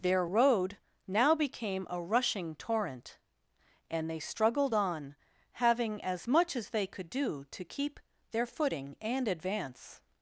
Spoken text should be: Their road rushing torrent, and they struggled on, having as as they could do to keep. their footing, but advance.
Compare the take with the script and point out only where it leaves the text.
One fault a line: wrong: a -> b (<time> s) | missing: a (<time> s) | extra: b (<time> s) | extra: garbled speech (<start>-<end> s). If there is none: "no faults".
extra: now became a (1.1 s)
extra: much (6.3 s)
wrong: but -> and (9.0 s)